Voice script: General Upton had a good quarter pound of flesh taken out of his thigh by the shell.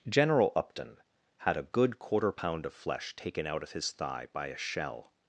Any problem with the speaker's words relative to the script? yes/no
yes